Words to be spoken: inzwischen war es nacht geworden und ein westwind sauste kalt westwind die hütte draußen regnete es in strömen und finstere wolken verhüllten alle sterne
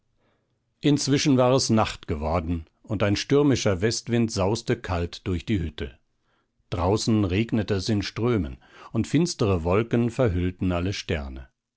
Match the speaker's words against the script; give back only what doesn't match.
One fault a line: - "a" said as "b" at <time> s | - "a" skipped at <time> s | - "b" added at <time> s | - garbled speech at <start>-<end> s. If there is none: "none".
- "stürmischer" added at 3.1 s
- "westwind" said as "durch" at 5.3 s